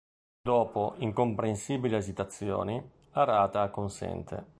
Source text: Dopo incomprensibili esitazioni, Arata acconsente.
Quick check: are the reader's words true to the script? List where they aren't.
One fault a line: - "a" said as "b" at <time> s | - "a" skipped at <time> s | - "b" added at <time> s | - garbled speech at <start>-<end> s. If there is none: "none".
none